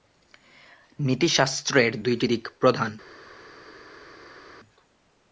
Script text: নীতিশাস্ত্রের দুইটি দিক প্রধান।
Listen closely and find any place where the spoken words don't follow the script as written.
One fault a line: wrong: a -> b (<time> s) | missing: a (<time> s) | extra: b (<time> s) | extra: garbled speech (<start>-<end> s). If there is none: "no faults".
no faults